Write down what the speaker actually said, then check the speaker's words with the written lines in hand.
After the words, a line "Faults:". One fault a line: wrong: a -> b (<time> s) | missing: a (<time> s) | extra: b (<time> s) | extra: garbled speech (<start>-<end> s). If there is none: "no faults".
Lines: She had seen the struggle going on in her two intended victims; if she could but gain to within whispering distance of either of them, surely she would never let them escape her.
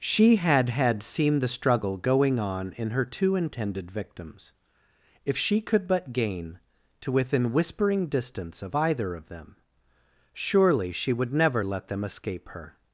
She had had seen the struggle going on in her two intended victims; if she could but gain to within whispering distance of either of them, surely she would never let them escape her.
Faults:
extra: had (0.7 s)